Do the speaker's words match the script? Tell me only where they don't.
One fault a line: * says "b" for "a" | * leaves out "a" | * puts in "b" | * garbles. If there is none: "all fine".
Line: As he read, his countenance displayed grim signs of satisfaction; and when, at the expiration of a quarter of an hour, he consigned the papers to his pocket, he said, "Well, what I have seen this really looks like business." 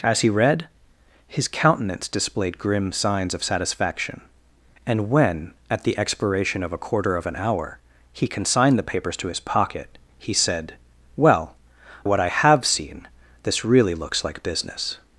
all fine